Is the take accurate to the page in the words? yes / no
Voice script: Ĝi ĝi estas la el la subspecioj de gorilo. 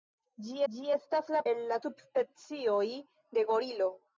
yes